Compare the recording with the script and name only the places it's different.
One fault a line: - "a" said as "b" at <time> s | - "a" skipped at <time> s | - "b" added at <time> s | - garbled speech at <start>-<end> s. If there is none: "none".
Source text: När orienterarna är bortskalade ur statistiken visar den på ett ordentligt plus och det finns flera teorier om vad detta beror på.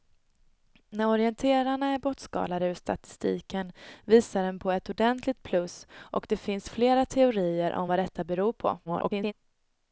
- garbled speech at 8.9-9.3 s